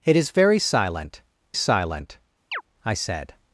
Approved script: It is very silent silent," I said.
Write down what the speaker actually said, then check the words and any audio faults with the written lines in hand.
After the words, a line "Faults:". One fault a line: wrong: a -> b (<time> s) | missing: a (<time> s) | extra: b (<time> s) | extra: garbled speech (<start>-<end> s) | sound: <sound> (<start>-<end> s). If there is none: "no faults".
It is very silent silent," I said.
Faults:
sound: chirp (2.5-2.6 s)